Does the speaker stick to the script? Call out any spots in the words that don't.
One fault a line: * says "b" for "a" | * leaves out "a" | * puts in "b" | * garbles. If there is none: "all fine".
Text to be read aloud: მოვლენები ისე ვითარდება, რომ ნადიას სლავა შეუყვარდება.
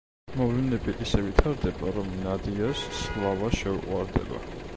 all fine